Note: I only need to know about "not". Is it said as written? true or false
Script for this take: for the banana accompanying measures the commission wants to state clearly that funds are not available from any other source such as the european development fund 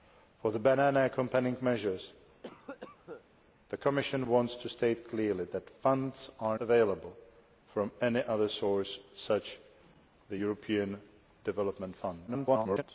false